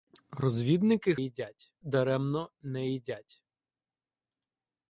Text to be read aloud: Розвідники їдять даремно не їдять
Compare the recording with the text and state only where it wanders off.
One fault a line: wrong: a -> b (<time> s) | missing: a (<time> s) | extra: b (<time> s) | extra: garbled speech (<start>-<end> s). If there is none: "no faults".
no faults